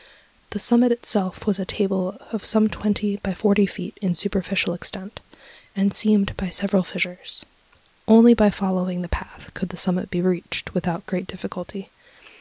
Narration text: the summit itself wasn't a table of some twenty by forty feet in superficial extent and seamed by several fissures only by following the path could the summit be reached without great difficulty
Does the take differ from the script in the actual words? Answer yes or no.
yes